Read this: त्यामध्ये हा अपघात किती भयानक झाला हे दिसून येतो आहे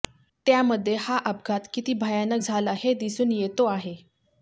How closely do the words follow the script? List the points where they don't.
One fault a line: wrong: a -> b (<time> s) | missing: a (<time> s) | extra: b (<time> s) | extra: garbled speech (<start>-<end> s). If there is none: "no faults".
no faults